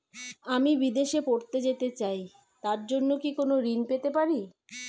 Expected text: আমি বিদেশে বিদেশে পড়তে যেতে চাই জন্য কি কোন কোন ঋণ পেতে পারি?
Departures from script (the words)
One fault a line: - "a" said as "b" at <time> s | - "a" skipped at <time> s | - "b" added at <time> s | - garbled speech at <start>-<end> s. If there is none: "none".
- "বিদেশে" skipped at 1.2 s
- "তার" added at 2.6 s
- "কোন" skipped at 3.5 s